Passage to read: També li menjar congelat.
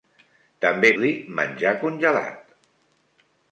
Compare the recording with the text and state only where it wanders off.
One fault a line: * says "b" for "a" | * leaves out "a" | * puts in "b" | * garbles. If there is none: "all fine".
all fine